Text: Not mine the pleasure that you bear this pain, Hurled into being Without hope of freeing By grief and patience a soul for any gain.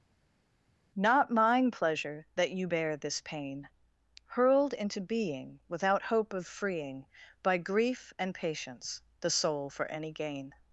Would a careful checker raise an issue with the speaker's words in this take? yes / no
yes